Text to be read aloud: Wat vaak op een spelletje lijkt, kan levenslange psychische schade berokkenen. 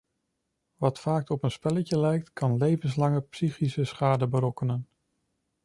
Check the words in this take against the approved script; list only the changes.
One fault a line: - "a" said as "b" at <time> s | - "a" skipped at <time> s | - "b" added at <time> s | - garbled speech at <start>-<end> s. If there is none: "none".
none